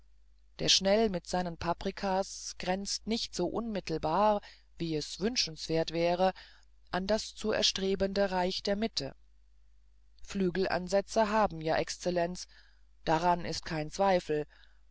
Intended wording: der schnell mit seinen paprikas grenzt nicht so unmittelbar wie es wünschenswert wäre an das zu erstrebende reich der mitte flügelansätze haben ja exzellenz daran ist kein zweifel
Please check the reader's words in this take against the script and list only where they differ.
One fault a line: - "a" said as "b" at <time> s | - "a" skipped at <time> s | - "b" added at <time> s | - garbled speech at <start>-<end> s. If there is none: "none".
none